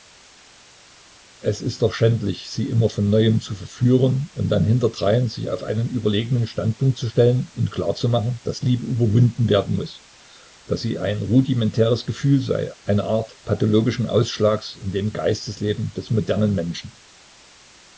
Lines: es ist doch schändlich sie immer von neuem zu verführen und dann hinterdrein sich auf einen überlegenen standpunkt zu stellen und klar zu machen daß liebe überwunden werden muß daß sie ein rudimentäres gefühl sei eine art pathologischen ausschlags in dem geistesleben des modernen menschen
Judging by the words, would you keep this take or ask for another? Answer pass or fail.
pass